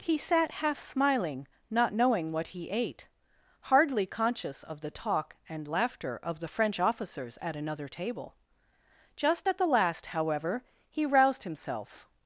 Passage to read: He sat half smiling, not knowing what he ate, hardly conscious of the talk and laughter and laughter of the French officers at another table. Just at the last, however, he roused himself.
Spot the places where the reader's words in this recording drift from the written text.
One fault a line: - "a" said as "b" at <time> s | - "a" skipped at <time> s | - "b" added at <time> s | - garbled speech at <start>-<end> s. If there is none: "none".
- "and laughter" skipped at 6.2 s